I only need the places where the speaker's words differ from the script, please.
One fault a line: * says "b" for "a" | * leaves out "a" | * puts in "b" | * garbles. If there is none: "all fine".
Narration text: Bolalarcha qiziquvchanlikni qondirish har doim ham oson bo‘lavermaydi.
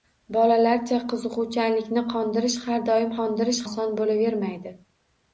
* says "qondirish" for "ham"